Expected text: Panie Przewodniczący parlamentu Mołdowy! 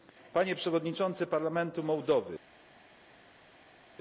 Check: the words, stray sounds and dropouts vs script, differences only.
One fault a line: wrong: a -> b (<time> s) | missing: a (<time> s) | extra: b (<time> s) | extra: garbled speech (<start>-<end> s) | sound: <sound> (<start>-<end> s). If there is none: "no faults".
no faults